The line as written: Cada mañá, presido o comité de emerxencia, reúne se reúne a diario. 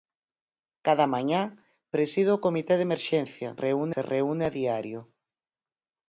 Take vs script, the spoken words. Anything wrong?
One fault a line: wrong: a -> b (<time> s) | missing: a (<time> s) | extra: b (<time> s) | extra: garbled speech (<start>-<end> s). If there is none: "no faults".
no faults